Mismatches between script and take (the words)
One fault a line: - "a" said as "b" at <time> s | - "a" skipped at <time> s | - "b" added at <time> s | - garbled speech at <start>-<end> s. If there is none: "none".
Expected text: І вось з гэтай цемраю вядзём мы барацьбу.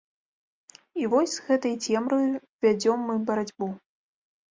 none